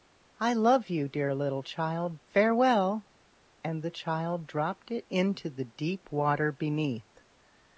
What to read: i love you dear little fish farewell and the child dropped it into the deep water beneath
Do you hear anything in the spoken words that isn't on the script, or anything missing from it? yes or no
yes